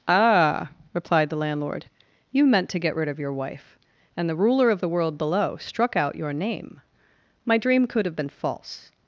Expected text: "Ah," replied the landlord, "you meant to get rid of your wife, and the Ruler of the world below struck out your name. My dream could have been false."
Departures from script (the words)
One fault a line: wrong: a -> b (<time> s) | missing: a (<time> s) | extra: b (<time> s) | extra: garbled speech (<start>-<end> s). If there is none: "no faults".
no faults